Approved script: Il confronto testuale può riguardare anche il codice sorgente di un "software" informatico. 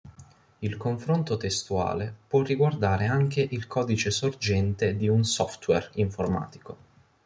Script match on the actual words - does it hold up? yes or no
yes